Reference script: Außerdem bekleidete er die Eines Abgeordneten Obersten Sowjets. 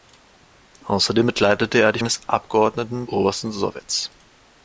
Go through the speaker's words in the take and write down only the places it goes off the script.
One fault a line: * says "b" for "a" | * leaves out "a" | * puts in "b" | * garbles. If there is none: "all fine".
all fine